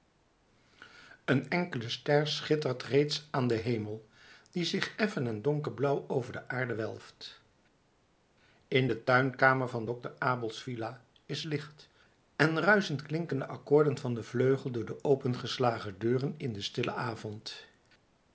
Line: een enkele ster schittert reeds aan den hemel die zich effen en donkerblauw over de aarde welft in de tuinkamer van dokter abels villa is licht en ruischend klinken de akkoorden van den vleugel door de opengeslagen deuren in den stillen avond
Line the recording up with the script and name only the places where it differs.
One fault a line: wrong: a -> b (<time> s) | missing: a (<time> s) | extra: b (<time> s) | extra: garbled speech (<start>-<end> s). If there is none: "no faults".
no faults